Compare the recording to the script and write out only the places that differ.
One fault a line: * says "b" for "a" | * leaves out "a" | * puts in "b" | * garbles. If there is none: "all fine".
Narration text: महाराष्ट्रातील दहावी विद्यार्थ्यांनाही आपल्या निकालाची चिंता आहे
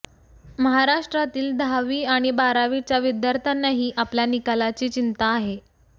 * puts in "आणि बारावीच्या"